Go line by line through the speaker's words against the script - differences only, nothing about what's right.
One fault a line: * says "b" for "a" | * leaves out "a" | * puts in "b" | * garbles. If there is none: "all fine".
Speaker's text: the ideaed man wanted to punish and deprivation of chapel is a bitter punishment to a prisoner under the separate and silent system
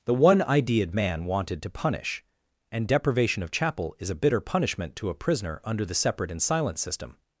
* puts in "one"